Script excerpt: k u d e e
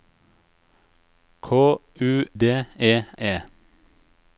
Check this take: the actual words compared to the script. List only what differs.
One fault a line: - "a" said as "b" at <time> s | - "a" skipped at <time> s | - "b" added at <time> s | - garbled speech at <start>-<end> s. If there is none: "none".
none